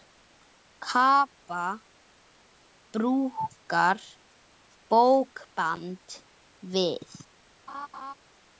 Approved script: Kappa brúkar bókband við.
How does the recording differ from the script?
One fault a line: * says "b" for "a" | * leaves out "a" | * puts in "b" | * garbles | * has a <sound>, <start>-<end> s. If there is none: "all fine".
* has a laugh, 7.7-8.1 s